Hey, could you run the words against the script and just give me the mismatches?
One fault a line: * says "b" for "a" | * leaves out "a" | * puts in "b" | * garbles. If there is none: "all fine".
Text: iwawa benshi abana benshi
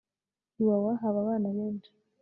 * says "haba" for "benshi"